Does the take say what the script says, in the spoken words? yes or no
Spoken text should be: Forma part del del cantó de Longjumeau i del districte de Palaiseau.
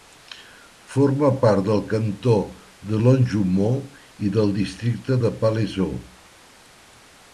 no